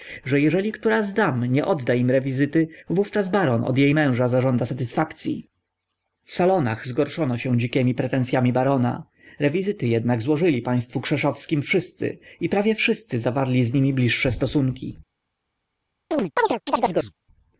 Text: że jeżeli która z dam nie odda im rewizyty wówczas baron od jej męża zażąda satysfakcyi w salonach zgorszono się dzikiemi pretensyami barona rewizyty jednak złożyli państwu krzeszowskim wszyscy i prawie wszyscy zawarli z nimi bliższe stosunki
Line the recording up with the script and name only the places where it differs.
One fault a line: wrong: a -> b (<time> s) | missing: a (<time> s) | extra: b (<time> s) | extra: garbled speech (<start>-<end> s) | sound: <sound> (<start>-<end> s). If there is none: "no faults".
sound: chirp (16.1-17.1 s)